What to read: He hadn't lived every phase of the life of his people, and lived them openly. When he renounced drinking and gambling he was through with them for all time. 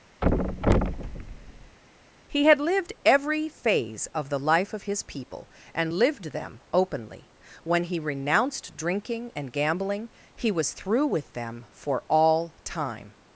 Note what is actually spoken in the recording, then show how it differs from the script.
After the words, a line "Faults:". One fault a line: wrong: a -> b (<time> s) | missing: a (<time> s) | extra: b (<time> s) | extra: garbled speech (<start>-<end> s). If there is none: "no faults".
He had lived every phase of the life of his people, and lived them openly. When he renounced drinking and gambling he was through with them for all time.
Faults:
wrong: hadn't -> had (2.4 s)